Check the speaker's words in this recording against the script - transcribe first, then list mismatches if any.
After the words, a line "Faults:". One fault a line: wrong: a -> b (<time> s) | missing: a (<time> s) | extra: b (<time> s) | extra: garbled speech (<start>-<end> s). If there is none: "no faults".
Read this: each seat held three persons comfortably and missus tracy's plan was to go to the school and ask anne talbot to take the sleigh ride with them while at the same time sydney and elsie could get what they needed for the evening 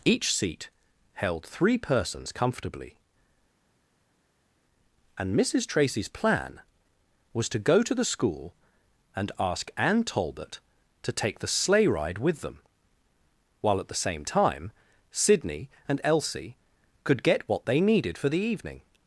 each seat held three persons comfortably and missus tracy's plan was to go to the school and ask anne talbot to take the sleigh ride with them while at the same time sydney and elsie could get what they needed for the evening
Faults:
no faults